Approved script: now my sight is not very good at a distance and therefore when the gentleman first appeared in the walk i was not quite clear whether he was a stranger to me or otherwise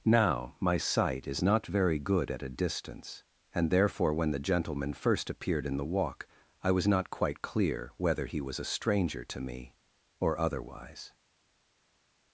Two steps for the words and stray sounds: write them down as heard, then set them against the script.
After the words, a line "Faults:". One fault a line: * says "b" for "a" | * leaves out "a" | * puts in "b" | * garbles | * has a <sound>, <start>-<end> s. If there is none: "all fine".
now my sight is not very good at a distance and therefore when the gentleman first appeared in the walk i was not quite clear whether he was a stranger to me or otherwise
Faults:
all fine